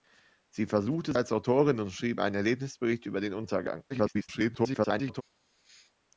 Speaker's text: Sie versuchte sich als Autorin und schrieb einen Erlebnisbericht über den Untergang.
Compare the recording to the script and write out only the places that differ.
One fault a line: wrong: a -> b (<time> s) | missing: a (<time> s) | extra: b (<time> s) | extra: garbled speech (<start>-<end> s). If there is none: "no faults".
missing: sich (1.1 s)
extra: garbled speech (3.9-5.2 s)